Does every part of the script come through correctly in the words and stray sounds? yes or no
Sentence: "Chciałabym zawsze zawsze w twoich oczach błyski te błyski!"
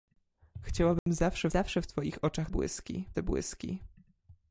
no